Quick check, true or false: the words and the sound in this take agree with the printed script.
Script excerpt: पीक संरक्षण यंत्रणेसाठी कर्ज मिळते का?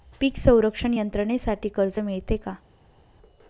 true